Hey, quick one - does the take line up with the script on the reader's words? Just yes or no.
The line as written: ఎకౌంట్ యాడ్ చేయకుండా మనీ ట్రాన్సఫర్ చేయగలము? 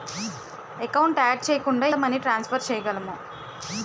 yes